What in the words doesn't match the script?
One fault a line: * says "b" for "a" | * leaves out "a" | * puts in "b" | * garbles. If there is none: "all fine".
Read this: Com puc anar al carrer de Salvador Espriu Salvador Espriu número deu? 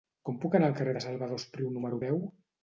* leaves out "Salvador Espriu"